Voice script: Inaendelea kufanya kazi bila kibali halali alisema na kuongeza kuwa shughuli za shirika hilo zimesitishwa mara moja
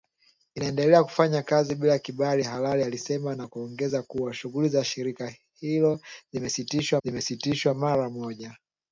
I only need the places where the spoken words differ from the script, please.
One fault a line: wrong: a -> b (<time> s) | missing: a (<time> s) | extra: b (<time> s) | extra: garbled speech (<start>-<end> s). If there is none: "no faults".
extra: zimesitishwa (7.0 s)